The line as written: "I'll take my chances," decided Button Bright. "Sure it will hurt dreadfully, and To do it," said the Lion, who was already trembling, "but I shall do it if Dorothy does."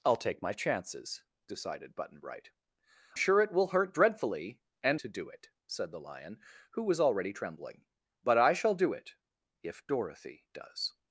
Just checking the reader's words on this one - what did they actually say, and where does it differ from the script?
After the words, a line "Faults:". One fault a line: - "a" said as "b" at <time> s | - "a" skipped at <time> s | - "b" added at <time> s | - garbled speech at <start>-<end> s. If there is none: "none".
"I'll take my chances," decided Button Bright. "Sure it will hurt dreadfully, and To do it," said the Lion, who was already trembling, "but I shall do it if Dorothy does."
Faults:
none